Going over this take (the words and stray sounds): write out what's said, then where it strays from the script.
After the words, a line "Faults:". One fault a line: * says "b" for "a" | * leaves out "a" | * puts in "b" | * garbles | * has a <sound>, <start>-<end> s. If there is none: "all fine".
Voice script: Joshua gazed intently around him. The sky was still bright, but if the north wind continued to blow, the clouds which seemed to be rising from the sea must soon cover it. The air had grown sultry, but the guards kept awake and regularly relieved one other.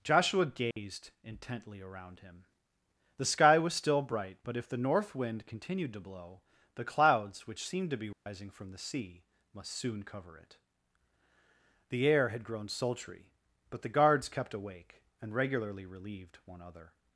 Joshua gazed intently around him. The sky was still bright, but if the north wind continued to blow, the clouds which seemed to be rising from the sea must soon cover it. The air had grown sultry, but the guards kept awake and regularly relieved one other.
Faults:
* has a dropout, 0.7-0.8 s
* has a dropout, 8.1-8.3 s